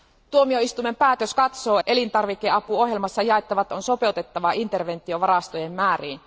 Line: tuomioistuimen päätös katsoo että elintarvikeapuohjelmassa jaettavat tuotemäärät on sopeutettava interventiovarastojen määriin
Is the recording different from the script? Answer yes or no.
yes